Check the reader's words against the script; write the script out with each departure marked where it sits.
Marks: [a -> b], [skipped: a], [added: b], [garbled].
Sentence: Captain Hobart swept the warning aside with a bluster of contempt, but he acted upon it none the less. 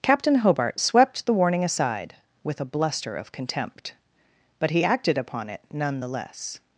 Captain Hobart swept the warning aside with a bluster of contempt, but he acted upon it none the less.